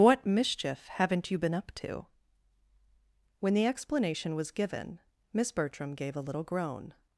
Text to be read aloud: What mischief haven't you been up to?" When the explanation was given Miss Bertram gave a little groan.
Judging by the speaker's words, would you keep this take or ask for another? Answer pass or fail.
pass